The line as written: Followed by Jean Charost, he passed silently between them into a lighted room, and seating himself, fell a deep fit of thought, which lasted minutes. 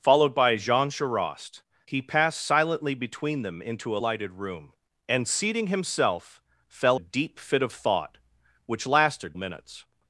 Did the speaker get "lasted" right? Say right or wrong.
right